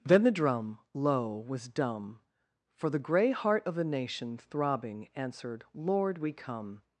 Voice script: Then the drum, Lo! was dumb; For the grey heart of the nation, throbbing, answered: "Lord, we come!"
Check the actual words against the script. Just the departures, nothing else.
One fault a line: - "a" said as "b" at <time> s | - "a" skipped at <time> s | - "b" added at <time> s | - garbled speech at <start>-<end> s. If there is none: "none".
none